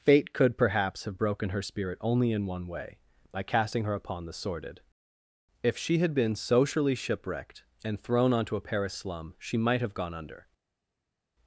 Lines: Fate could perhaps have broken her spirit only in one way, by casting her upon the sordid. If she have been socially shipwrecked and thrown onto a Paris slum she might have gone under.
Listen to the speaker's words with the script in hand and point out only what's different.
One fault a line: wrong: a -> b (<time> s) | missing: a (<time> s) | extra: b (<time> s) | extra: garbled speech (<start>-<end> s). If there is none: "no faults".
wrong: have -> had (6.0 s)